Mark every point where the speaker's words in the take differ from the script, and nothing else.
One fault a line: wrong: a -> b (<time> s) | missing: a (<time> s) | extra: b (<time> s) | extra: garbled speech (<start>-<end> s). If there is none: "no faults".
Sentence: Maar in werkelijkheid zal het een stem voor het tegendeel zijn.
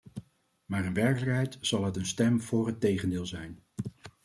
no faults